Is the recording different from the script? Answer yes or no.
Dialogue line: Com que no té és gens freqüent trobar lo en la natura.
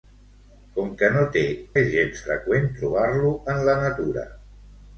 no